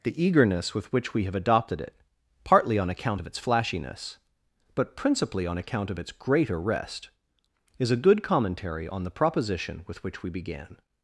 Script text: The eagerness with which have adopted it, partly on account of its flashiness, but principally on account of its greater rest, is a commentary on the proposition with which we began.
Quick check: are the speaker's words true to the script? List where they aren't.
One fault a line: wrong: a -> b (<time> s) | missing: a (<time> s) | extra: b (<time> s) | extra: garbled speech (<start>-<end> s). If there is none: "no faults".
extra: we (1.1 s)
extra: good (8.0 s)